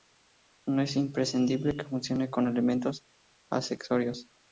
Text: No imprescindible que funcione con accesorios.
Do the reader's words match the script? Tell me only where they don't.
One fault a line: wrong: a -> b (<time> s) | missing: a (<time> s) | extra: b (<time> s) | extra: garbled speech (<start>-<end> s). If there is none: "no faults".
extra: es (0.8 s)
extra: elementos (2.5 s)